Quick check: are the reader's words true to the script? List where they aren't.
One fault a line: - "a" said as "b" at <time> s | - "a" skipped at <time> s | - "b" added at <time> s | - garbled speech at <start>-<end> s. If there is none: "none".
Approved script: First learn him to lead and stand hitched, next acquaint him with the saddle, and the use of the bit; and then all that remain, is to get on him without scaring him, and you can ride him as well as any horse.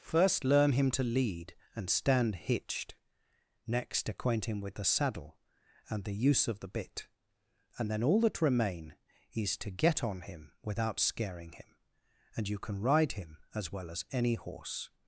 none